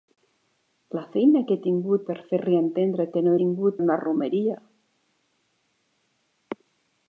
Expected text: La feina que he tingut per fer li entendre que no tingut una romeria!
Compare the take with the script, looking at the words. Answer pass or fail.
pass